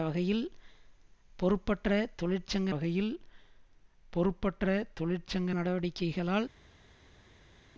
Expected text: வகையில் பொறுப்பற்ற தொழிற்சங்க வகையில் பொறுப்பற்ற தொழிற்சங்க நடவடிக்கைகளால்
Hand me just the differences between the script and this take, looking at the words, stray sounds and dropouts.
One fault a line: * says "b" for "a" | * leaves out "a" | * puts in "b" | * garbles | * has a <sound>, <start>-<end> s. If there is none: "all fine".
all fine